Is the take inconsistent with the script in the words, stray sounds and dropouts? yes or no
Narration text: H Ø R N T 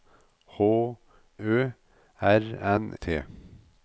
no